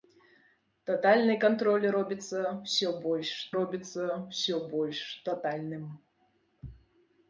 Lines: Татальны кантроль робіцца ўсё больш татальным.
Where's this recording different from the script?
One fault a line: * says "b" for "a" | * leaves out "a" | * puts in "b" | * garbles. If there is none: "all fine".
* puts in "робіцца ўсё больш"